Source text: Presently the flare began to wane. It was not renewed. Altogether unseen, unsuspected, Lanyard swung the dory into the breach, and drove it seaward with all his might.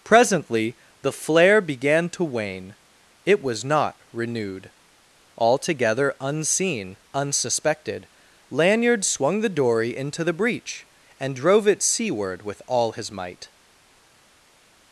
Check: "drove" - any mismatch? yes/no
no